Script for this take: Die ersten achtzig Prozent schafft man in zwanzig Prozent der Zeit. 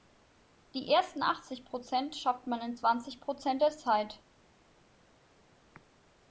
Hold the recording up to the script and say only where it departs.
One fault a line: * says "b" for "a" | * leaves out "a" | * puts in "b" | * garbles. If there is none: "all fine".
all fine